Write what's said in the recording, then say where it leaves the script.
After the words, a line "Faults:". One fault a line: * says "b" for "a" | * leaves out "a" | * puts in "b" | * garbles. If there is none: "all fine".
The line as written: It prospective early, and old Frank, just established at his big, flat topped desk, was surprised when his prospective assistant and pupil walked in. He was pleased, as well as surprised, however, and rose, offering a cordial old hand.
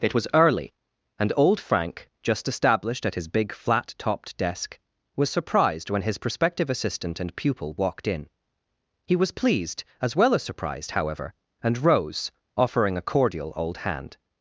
It was early, and old Frank, just established at his big, flat topped desk, was surprised when his prospective assistant and pupil walked in. He was pleased, as well as surprised, however, and rose, offering a cordial old hand.
Faults:
* says "was" for "prospective"